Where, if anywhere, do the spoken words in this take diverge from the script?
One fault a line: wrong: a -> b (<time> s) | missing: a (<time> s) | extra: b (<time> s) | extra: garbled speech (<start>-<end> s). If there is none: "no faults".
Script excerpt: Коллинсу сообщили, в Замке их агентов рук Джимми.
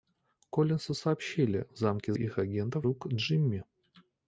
no faults